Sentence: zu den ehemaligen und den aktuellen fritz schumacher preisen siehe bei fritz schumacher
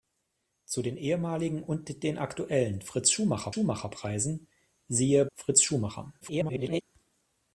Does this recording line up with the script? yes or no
no